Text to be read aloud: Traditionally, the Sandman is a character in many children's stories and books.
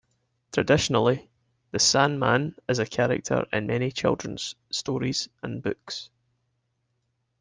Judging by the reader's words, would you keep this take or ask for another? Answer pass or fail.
pass